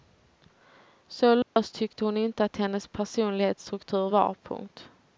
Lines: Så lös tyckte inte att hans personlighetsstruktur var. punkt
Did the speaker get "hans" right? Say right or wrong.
wrong